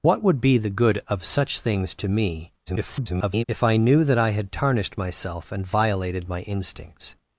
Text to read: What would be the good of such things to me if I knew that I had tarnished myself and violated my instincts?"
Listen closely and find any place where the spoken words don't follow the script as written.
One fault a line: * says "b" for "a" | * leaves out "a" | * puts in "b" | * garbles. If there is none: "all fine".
* garbles